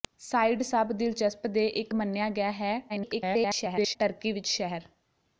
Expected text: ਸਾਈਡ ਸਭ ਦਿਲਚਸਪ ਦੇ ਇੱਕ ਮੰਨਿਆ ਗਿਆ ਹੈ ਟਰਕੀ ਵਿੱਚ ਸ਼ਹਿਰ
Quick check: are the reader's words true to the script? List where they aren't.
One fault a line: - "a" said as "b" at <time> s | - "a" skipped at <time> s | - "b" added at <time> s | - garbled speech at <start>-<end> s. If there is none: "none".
- garbled speech at 2.9-4.0 s